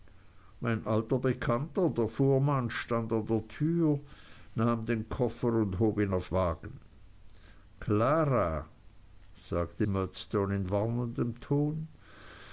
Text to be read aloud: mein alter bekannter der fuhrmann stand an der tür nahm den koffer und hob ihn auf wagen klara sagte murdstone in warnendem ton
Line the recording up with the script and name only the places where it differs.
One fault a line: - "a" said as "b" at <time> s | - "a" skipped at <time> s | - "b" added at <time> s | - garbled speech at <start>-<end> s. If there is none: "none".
none